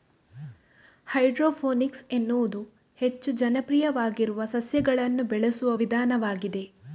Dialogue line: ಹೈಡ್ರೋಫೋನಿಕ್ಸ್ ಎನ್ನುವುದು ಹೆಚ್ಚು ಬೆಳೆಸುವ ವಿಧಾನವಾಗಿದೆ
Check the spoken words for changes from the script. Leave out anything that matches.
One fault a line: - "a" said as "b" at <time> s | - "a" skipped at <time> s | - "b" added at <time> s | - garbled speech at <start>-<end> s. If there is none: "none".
- "ಜನಪ್ರಿಯವಾಗಿರುವ ಸಸ್ಯಗಳನ್ನು" added at 3.3 s